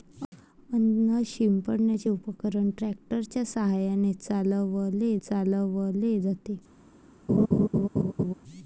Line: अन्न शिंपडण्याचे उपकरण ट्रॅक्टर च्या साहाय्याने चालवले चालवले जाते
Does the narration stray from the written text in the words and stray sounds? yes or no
yes